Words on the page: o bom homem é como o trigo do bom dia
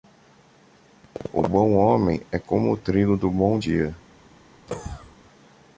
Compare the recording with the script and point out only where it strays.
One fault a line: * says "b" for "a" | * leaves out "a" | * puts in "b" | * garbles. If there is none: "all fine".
all fine